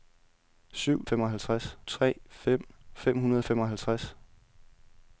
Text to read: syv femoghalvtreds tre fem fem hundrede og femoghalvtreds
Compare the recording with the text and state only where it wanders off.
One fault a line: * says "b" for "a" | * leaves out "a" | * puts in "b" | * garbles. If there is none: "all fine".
all fine